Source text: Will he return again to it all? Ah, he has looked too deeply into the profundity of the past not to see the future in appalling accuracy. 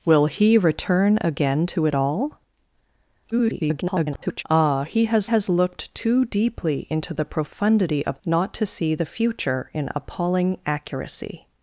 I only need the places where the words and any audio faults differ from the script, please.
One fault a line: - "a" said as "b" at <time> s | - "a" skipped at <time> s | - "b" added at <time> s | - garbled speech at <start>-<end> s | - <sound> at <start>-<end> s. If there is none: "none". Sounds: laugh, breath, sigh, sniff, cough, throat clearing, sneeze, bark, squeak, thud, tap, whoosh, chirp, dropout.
- garbled speech at 3.3-4.4 s
- "has" added at 5.2 s
- "the past" skipped at 8.2 s